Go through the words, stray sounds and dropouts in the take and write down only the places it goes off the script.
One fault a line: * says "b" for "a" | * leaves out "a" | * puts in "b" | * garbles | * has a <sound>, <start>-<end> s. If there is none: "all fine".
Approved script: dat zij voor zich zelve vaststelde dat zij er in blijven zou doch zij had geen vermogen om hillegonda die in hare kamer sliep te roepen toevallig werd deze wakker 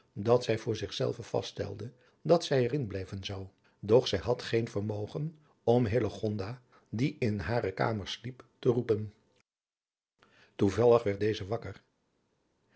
all fine